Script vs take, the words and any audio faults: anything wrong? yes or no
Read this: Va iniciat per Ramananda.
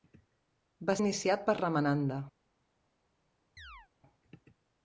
yes